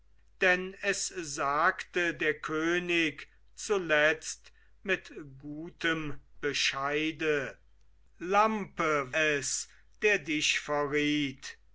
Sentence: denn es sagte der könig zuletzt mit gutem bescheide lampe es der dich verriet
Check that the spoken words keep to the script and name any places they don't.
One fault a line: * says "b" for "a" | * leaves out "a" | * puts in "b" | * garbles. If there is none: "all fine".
all fine